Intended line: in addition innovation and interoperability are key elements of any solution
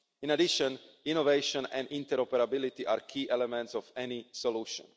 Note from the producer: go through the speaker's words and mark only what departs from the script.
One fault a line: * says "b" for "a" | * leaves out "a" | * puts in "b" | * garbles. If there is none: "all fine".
all fine